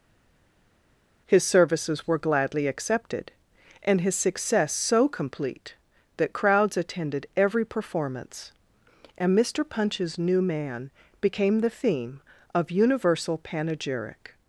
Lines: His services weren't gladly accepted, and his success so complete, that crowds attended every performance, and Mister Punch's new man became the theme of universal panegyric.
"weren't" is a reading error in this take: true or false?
true